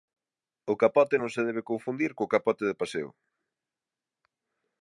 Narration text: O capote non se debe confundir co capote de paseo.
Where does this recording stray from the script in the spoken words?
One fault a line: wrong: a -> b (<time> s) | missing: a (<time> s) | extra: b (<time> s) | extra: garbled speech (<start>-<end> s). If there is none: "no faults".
no faults